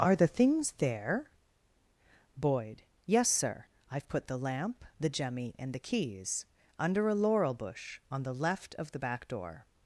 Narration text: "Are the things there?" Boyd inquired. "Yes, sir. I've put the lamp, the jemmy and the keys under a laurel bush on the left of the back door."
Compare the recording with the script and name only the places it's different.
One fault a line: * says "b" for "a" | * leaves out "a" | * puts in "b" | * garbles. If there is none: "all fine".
* leaves out "inquired"